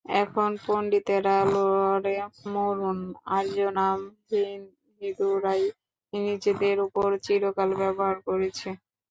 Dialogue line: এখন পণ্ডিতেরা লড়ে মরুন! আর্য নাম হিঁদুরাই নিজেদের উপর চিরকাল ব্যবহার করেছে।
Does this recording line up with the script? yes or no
yes